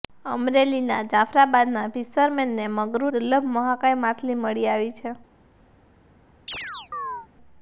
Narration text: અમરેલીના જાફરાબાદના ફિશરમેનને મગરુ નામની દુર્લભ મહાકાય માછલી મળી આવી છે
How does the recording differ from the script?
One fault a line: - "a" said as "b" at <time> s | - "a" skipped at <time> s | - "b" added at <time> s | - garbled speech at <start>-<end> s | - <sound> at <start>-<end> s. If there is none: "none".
- "નામની" skipped at 3.1 s
- chirp at 6.5-7.3 s